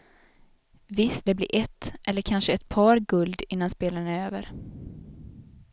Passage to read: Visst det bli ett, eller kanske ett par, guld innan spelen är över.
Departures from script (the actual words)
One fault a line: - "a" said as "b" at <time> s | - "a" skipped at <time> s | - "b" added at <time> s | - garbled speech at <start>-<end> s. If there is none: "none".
none